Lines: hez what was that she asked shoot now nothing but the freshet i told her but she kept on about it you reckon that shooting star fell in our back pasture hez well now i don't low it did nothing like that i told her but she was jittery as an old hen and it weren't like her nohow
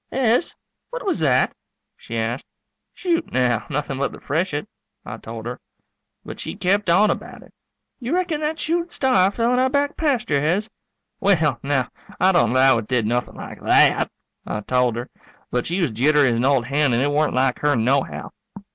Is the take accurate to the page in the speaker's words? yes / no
yes